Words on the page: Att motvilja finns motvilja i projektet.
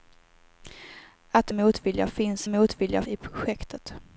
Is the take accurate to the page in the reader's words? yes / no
yes